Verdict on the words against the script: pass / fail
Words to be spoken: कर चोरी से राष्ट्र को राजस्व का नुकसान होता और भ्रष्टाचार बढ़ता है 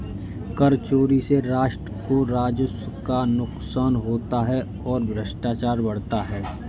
fail